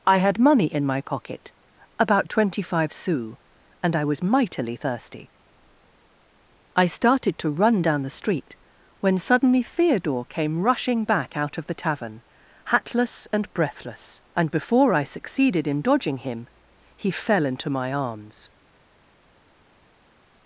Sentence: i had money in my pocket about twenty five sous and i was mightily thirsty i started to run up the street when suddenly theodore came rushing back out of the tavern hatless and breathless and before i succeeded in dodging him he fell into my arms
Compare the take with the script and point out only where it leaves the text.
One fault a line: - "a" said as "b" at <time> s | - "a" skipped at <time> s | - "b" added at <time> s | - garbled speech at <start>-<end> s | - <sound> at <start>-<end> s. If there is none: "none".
- "up" said as "down" at 7.8 s